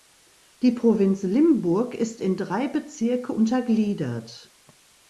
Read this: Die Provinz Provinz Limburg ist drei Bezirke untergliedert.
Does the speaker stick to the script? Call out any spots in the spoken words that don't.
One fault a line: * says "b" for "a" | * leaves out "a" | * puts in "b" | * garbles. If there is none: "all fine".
* leaves out "Provinz"
* puts in "in"